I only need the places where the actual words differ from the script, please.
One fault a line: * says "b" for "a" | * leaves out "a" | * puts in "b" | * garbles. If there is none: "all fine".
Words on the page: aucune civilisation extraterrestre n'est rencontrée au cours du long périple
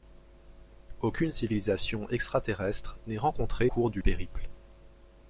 * leaves out "au"
* leaves out "long"